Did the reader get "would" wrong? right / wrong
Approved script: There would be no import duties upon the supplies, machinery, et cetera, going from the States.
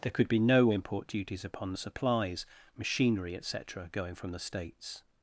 wrong